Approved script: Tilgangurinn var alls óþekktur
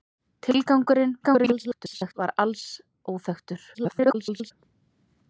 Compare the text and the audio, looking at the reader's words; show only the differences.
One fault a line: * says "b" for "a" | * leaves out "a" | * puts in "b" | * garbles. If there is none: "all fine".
* garbles
* garbles